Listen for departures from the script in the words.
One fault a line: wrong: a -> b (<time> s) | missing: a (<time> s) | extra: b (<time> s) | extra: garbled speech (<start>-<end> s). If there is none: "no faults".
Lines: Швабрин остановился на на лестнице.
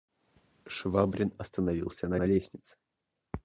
no faults